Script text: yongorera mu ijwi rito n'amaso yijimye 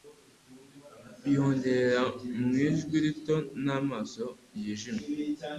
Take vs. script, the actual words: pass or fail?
pass